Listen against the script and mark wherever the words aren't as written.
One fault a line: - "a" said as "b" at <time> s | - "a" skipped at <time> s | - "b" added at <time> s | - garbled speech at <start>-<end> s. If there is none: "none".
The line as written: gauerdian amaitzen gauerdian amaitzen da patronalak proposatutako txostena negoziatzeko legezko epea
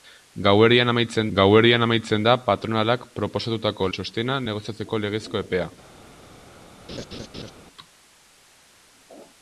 none